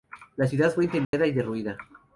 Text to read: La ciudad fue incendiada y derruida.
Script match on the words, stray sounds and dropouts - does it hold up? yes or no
no